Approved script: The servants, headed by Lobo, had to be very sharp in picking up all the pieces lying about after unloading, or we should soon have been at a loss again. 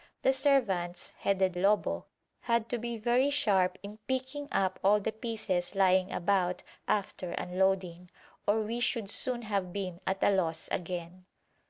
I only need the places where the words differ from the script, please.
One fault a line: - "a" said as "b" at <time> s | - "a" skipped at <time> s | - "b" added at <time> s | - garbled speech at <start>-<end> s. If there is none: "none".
- "by" skipped at 1.6 s